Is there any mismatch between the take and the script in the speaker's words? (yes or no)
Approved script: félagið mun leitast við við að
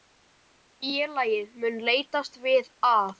yes